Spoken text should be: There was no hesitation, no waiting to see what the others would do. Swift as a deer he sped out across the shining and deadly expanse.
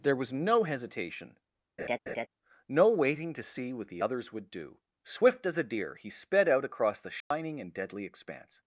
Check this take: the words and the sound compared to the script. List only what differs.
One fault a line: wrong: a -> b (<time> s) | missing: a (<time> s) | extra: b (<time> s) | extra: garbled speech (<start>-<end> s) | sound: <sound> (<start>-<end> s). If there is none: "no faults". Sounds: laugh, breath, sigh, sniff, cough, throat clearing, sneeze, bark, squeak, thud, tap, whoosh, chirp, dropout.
sound: laugh (1.8-2.3 s)
sound: dropout (7.2-7.3 s)